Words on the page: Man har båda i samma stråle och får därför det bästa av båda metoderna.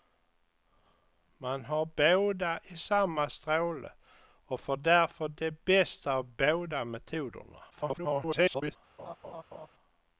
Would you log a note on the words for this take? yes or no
yes